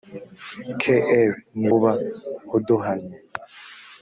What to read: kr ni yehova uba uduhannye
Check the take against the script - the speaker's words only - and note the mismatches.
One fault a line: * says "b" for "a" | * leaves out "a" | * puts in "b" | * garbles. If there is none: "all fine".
* leaves out "yehova"